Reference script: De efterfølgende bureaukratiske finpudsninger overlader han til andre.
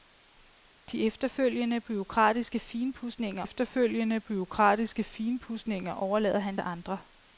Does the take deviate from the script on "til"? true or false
true